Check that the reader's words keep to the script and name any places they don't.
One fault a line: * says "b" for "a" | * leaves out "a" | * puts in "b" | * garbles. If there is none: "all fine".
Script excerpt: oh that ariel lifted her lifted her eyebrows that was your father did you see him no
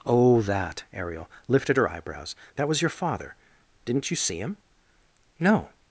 * leaves out "lifted her"
* says "didn't" for "did"